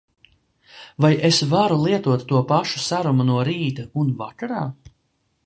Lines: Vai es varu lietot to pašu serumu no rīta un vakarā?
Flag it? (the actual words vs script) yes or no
no